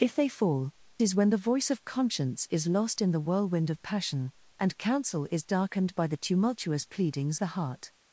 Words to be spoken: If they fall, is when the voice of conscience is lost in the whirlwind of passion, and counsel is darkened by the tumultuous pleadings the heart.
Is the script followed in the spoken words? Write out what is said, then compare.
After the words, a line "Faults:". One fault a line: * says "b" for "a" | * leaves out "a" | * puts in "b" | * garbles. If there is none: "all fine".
If they fall, is when the voice of conscience is lost in the whirlwind of passion, and counsel is darkened by the tumultuous pleadings the heart.
Faults:
all fine